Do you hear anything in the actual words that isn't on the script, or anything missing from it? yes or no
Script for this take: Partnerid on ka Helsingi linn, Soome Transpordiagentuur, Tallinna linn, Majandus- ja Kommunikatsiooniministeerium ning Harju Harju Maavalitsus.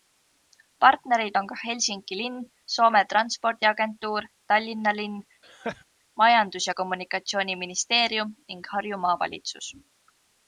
yes